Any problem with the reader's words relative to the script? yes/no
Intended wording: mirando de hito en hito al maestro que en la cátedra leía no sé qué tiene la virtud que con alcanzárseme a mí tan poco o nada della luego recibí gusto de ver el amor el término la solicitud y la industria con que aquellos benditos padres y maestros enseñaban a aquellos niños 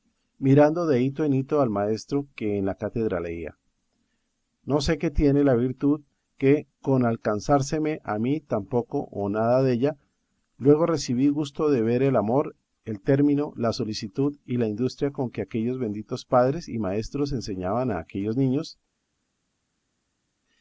no